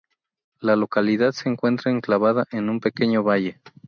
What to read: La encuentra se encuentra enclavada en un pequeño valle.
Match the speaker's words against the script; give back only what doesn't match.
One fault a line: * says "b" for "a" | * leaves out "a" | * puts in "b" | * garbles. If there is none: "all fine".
* says "localidad" for "encuentra"